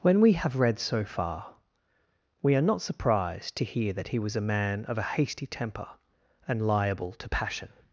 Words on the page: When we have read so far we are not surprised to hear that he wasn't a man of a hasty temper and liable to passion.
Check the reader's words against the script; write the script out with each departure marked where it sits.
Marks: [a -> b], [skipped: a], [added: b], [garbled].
When we have read so far we are not surprised to hear that he [wasn't -> was] a man of a hasty temper and liable to passion.